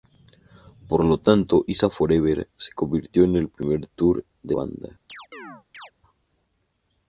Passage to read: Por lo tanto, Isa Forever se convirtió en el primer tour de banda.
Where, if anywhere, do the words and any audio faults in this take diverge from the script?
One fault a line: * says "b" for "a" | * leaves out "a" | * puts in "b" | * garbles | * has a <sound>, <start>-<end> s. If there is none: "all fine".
* has a chirp, 5.1-5.9 s